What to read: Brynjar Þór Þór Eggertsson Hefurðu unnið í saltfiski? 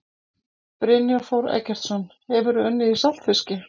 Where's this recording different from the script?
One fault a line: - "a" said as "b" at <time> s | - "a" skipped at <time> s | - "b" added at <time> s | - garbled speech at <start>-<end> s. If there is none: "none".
- "Þór" skipped at 1.5 s